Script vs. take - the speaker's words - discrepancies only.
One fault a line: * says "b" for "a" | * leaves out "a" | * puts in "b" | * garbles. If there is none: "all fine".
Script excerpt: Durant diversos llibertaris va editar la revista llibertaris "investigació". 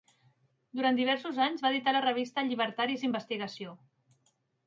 * says "anys" for "llibertaris"